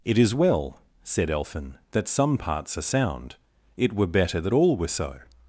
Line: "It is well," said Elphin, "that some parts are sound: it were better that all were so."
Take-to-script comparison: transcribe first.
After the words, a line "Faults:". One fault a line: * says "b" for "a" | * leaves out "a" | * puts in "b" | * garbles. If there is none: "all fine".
"It is well," said Elphin, "that some parts are sound: it were better that all were so."
Faults:
all fine